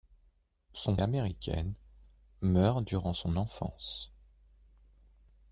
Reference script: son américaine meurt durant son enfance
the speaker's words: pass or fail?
pass